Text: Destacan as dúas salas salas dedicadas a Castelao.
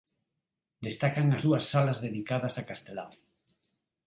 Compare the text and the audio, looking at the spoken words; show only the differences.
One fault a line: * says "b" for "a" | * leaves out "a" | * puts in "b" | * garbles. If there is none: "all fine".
* leaves out "salas"